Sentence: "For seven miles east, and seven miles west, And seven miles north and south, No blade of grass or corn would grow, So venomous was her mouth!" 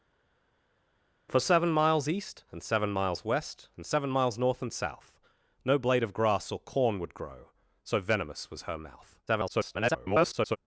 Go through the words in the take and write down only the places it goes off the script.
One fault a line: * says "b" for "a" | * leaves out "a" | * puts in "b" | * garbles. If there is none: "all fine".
* garbles